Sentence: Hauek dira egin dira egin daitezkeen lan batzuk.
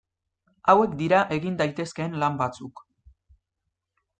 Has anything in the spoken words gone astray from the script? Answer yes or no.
yes